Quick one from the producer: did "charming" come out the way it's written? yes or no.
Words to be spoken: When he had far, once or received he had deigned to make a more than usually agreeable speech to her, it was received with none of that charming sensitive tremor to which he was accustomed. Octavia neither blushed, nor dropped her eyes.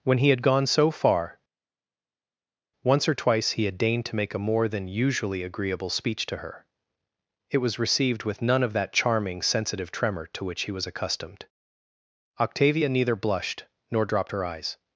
yes